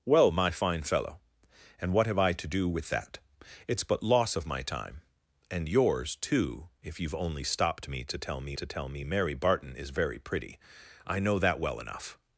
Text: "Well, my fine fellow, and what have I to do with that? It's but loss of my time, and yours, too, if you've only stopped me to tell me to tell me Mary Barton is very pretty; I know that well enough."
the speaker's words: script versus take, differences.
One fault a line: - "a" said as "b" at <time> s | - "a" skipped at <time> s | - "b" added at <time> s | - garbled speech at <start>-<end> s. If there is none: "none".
none